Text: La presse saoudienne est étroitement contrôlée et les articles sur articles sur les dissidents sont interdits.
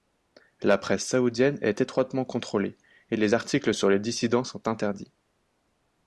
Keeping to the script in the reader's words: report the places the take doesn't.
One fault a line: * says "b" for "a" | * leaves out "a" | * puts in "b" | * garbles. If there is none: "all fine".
* leaves out "articles sur"